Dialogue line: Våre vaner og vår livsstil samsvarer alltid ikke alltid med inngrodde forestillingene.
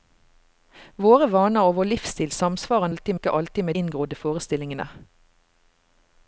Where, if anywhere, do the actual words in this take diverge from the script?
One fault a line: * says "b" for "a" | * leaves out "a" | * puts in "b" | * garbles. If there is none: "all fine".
all fine